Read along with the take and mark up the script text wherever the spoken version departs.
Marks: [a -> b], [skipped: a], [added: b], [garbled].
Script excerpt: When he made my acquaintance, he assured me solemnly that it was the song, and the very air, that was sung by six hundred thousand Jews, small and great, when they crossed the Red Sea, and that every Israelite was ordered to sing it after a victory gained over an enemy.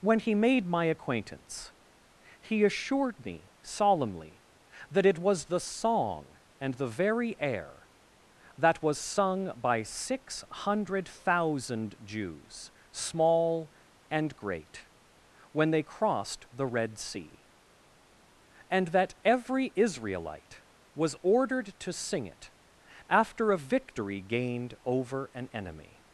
When he made my acquaintance, he assured me solemnly that it was the song, and the very air, that was sung by six hundred thousand Jews, small and great, when they crossed the Red Sea, and that every Israelite was ordered to sing it after a victory gained over an enemy.